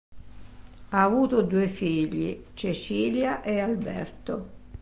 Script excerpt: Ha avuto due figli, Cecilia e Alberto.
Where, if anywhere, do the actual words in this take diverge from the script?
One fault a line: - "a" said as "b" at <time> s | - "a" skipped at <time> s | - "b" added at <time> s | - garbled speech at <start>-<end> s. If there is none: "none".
none